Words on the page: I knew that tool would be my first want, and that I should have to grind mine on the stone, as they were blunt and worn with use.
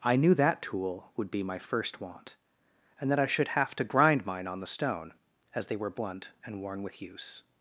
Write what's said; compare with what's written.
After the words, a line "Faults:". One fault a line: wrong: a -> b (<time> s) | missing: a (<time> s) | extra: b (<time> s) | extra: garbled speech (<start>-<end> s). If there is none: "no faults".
I knew that tool would be my first want, and that I should have to grind mine on the stone, as they were blunt and worn with use.
Faults:
no faults